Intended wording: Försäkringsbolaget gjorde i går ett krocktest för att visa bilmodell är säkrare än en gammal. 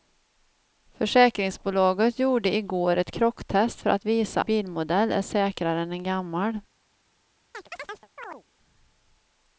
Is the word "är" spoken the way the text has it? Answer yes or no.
yes